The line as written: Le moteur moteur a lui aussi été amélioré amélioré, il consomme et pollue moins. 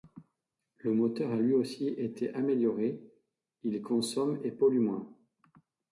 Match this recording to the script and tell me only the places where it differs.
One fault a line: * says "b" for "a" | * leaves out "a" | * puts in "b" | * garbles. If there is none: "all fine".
* leaves out "moteur"
* leaves out "amélioré"